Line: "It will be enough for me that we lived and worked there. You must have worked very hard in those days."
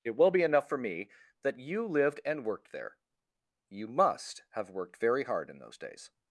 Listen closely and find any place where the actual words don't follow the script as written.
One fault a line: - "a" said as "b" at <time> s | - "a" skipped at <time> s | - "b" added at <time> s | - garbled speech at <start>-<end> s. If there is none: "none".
- "we" said as "you" at 1.6 s